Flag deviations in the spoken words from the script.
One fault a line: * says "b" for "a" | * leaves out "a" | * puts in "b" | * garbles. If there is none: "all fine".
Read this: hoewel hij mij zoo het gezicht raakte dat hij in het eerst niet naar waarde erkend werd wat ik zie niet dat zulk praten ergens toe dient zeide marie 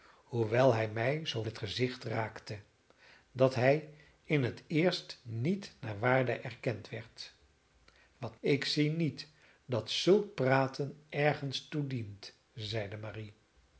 all fine